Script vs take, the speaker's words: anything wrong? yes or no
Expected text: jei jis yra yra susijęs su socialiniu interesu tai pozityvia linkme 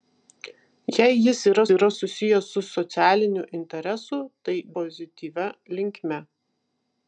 no